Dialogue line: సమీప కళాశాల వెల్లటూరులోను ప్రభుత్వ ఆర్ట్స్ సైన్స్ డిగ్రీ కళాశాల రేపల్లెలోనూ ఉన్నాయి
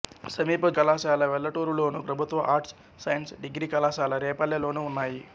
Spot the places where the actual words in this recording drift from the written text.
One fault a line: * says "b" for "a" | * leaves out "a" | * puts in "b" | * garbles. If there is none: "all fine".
all fine